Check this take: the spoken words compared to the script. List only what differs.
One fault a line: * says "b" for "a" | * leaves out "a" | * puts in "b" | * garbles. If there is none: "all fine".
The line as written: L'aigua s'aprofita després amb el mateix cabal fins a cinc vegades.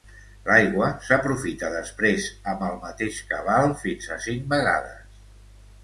all fine